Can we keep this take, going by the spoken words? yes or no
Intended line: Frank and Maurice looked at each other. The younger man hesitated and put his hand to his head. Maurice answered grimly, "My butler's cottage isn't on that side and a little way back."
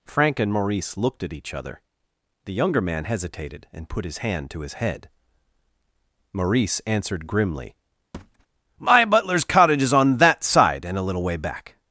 no